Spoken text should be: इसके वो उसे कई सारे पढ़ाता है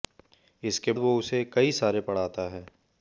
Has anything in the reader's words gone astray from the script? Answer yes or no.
no